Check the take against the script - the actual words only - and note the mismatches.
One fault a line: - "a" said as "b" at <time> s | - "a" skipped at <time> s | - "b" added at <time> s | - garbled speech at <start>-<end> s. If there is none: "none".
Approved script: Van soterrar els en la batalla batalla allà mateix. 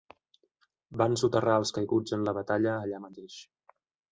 - "caiguts" added at 1.8 s
- "batalla" skipped at 2.8 s